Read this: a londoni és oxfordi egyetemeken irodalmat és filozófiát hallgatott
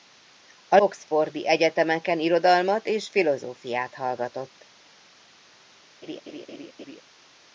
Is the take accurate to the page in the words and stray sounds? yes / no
no